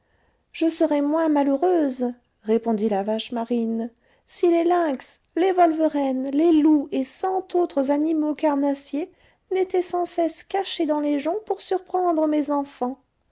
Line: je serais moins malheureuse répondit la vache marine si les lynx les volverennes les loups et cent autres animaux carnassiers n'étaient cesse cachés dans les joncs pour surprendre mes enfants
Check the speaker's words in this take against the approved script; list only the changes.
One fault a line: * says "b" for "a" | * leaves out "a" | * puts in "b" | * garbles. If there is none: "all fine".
* puts in "sans"